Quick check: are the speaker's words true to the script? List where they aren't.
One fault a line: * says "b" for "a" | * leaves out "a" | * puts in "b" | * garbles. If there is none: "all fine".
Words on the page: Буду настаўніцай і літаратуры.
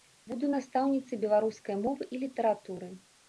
* puts in "беларускай мовы"